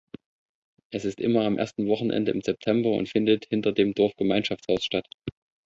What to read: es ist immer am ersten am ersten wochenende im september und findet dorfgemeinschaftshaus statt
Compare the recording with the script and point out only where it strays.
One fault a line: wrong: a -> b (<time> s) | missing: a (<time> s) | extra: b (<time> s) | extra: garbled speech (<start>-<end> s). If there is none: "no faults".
missing: am ersten (1.9 s)
extra: hinter dem (3.5 s)